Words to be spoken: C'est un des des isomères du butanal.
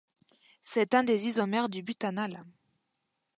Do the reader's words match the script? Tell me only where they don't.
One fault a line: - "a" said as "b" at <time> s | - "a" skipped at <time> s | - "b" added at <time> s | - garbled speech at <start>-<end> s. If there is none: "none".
- "des" skipped at 1.3 s